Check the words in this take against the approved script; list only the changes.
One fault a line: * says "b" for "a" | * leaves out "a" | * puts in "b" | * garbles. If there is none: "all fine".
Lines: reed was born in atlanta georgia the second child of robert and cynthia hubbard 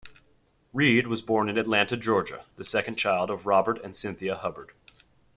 all fine